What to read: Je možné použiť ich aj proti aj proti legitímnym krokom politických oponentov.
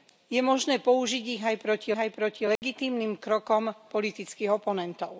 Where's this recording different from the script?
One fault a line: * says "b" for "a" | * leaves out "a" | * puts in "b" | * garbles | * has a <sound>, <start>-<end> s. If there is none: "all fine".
* has a dropout, 2.6-2.6 s